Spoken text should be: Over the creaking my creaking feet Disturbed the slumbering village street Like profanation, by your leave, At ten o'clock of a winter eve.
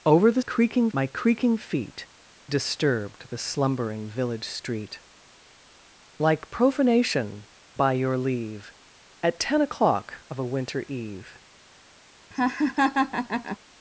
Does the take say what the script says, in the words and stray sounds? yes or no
no